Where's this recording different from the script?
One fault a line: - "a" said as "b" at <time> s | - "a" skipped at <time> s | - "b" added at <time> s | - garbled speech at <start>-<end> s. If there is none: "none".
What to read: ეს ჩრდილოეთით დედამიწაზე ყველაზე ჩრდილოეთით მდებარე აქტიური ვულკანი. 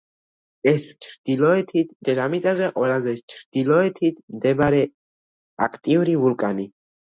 none